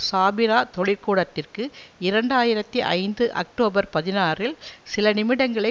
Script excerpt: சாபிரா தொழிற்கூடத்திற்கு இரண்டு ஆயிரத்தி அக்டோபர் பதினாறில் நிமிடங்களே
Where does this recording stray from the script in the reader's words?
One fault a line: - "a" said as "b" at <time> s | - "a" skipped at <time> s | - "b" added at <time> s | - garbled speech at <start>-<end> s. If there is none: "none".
- "ஐந்து" added at 2.9 s
- "சில" added at 4.8 s